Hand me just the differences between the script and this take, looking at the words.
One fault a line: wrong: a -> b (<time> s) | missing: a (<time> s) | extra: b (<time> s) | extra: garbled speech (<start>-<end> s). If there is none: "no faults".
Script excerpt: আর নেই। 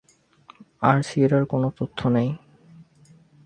extra: সিয়েরার কোনো তথ্য (1.0 s)